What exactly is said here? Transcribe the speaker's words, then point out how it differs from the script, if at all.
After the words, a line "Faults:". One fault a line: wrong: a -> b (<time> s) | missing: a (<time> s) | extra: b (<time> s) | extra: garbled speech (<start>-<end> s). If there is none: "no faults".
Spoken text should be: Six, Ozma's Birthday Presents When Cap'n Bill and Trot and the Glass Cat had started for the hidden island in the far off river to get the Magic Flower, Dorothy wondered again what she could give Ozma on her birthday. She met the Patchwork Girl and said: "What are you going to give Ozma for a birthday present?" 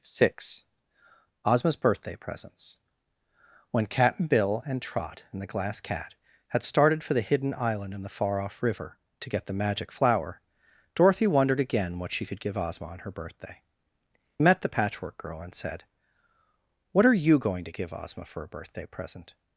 Six, Ozma's Birthday Presents When Cap'n Bill and Trot and the Glass Cat had started for the hidden island in the far off river to get the Magic Flower, Dorothy wondered again what she could give Ozma on her birthday. Met the Patchwork Girl and said: "What are you going to give Ozma for a birthday present?"
Faults:
missing: She (13.6 s)